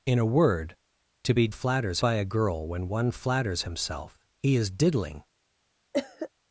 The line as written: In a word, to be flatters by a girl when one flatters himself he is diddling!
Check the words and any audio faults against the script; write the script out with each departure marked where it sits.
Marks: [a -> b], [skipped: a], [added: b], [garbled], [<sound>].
In a word, to be flatters by a girl when one flatters himself he is diddling! [cough]